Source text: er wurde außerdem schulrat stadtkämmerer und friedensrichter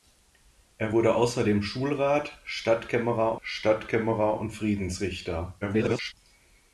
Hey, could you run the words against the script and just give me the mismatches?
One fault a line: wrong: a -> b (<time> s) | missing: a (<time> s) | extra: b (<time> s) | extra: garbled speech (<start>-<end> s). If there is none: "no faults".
extra: stadtkämmerer (3.4 s)
extra: garbled speech (5.6-6.1 s)